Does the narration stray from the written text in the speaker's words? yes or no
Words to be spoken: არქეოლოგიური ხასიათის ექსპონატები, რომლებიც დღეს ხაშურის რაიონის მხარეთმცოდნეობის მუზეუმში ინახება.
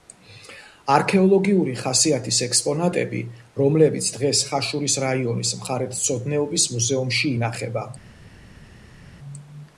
no